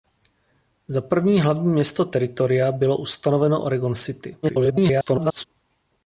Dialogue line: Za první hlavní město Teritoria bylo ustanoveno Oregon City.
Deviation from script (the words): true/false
true